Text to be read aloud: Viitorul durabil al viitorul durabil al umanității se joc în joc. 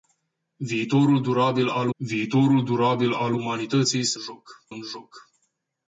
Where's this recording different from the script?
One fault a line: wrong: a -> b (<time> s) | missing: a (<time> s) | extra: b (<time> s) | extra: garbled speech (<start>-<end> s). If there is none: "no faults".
no faults